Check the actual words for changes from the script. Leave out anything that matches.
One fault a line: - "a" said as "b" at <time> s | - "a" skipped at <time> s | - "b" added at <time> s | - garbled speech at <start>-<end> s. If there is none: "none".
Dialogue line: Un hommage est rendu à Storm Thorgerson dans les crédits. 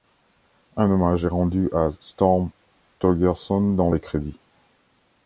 none